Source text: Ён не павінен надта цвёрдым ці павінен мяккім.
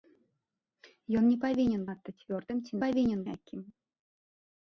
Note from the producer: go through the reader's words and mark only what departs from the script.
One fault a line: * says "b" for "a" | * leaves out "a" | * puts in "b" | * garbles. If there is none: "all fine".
all fine